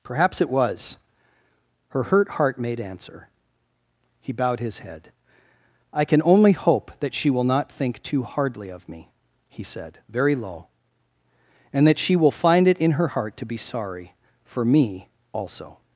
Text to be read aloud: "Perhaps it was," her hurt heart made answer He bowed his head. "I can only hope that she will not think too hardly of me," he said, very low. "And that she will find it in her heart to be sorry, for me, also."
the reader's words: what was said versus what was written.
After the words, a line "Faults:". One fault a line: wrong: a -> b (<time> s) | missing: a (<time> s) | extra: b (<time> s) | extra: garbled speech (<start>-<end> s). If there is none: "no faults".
"Perhaps it was," her hurt heart made answer He bowed his head. "I can only hope that she will not think too hardly of me," he said, very low. "And that she will find it in her heart to be sorry, for me, also."
Faults:
no faults